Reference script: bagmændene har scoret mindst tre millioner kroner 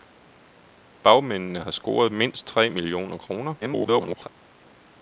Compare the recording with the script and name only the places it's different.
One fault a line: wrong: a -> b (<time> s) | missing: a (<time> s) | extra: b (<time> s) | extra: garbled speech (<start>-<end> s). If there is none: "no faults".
extra: garbled speech (3.6-4.3 s)